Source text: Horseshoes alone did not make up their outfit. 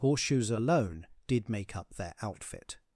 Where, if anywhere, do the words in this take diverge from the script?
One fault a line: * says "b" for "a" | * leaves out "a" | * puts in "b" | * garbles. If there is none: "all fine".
* leaves out "not"